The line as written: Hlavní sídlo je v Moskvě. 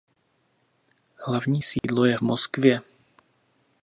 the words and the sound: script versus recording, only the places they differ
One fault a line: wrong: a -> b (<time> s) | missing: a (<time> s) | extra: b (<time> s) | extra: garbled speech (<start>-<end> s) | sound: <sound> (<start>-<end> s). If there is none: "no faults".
sound: dropout (1.8-1.8 s)